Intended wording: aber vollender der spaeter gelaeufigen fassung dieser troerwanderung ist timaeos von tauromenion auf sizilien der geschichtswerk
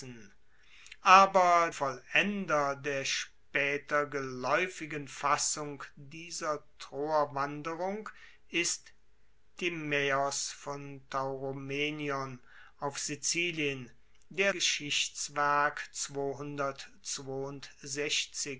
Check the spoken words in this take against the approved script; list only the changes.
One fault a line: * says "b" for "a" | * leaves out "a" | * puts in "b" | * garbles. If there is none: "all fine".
all fine